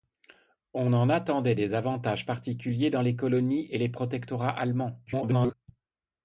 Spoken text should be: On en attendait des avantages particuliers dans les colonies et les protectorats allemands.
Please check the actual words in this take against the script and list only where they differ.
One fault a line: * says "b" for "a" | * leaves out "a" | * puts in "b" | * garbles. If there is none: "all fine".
* garbles